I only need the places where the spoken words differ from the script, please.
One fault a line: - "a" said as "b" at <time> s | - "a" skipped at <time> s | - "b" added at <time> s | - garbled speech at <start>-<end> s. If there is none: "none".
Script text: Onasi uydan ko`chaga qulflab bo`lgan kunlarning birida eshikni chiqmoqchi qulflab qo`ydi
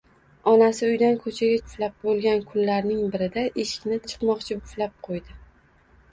none